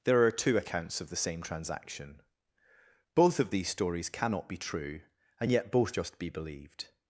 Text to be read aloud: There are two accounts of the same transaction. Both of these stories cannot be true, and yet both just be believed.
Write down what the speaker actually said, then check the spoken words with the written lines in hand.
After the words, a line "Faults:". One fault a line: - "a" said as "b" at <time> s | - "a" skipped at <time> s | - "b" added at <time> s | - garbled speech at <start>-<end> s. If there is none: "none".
There are two accounts of the same transaction. Both of these stories cannot be true, and yet both just be believed.
Faults:
none